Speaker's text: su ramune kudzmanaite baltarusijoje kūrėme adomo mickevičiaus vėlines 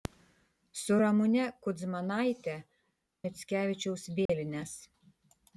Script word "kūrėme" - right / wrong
wrong